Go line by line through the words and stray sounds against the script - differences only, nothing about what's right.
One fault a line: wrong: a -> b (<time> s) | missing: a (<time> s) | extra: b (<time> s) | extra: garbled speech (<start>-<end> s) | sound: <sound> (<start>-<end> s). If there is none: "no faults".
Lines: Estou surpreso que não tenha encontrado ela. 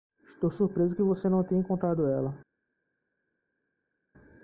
extra: você (1.0 s)